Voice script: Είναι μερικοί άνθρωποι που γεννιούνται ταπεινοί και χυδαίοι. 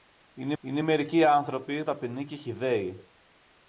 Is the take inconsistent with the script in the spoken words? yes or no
yes